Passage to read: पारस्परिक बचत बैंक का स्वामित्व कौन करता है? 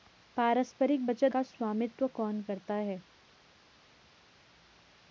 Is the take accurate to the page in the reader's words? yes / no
no